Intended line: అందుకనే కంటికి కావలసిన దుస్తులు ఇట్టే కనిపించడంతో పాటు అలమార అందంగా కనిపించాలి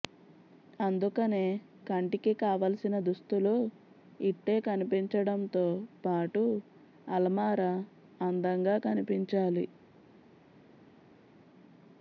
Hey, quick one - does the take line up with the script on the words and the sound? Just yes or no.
yes